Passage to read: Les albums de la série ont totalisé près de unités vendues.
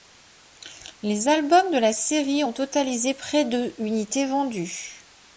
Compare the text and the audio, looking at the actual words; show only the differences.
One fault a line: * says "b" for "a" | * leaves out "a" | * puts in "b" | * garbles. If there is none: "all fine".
all fine